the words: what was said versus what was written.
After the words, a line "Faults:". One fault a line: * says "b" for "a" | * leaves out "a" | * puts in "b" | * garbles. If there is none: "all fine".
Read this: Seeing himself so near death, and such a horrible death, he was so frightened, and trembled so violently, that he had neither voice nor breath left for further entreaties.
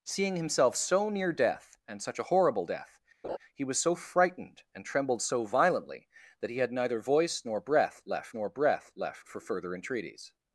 Seeing himself so near death, and such a horrible death, he was so frightened, and trembled so violently, that he had neither voice nor breath left nor breath left for further entreaties.
Faults:
* puts in "nor breath left"